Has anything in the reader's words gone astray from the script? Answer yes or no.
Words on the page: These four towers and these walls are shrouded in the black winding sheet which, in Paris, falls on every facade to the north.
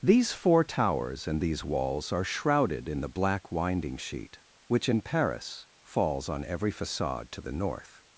no